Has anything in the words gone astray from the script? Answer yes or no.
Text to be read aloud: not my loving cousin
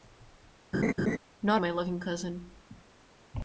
no